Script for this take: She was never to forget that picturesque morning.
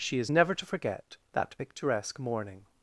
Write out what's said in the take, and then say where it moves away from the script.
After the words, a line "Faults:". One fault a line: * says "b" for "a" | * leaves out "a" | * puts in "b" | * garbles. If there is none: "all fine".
She is never to forget that picturesque morning.
Faults:
* says "is" for "was"